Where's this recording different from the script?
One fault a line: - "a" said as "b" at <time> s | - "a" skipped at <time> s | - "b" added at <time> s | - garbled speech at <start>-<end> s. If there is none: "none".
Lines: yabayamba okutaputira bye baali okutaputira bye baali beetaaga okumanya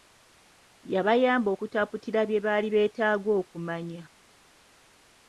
- "okutaputira bye baali" skipped at 2.7 s